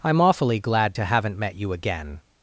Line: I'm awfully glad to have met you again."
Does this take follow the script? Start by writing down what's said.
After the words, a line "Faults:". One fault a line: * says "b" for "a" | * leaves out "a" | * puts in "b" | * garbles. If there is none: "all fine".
I'm awfully glad to haven't met you again."
Faults:
* says "haven't" for "have"